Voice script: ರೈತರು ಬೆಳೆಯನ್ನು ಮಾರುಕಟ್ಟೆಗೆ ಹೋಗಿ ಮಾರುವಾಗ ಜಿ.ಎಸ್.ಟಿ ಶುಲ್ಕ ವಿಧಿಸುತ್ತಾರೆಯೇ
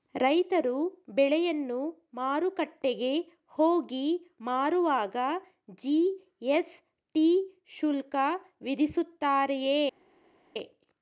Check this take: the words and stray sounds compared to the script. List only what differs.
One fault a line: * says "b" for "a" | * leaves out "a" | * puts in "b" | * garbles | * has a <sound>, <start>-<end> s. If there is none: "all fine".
all fine